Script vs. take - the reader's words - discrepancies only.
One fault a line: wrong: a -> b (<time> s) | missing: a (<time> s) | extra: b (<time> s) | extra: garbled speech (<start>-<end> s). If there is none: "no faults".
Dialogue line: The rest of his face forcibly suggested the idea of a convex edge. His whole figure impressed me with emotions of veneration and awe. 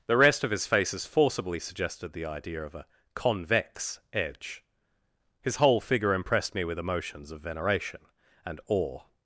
wrong: face -> faces (0.7 s)